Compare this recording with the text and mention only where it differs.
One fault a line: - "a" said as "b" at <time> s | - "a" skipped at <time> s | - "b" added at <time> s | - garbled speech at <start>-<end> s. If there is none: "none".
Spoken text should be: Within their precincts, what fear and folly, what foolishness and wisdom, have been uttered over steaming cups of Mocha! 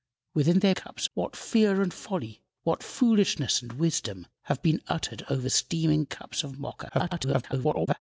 - "precincts" said as "cups" at 0.7 s
- garbled speech at 6.9-8.0 s